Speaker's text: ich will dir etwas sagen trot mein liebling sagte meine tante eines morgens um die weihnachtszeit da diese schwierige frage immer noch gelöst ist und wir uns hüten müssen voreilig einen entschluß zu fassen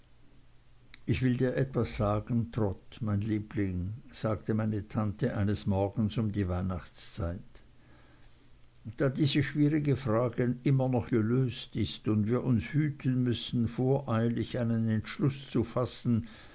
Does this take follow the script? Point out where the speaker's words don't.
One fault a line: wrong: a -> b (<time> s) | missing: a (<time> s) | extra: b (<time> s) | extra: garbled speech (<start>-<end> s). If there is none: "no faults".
no faults